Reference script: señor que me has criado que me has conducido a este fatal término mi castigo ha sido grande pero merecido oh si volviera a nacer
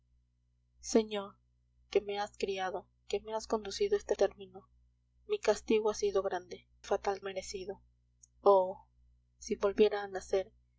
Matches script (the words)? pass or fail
fail